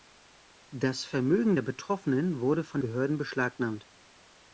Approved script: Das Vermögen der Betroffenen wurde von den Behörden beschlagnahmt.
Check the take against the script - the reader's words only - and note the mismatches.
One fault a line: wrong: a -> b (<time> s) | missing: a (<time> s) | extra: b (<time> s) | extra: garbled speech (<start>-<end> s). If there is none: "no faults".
missing: den (2.8 s)